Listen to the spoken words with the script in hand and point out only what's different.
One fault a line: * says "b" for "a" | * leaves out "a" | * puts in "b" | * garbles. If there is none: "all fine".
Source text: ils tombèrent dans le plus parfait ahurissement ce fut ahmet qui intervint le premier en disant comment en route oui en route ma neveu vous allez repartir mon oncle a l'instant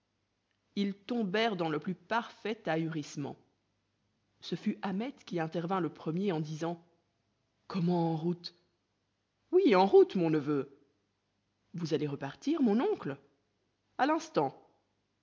* says "mon" for "ma"